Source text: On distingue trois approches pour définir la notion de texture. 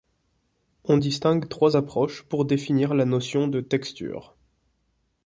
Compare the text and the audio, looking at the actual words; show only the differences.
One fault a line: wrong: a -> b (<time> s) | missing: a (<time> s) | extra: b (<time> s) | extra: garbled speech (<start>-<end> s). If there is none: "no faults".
no faults